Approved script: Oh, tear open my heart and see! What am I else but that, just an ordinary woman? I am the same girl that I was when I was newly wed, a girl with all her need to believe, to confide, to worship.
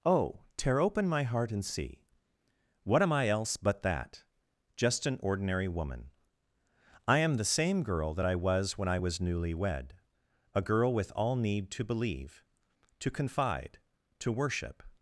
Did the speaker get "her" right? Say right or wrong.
wrong